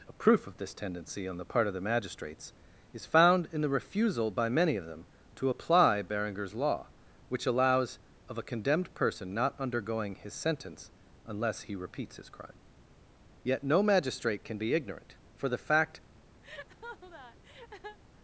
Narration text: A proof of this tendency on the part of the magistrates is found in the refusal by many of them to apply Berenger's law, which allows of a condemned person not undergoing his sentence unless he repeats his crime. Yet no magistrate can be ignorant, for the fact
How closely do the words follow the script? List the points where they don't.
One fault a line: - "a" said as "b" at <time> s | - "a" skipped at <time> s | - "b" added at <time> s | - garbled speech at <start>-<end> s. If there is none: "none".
none